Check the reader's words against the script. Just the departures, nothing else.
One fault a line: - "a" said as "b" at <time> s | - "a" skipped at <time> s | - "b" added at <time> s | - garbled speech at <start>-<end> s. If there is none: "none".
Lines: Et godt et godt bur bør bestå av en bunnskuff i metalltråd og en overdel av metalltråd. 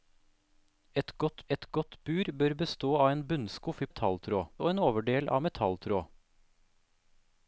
none